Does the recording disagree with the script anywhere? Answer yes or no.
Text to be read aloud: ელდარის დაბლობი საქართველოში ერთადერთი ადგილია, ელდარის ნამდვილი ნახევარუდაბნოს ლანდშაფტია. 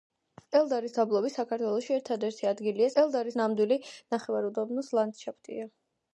no